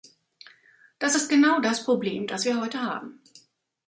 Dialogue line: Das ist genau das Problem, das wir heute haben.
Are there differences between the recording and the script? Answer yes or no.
no